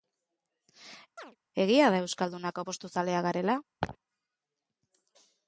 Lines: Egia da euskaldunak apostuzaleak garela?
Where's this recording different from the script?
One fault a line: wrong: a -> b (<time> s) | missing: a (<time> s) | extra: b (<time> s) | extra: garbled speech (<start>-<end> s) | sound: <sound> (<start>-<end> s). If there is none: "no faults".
sound: chirp (1.2-1.4 s)
sound: laugh (3.8-4.0 s)